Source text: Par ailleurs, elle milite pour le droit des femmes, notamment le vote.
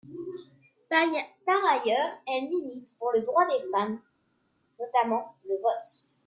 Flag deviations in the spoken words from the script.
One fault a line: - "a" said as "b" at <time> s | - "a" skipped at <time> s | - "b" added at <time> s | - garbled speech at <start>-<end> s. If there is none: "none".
none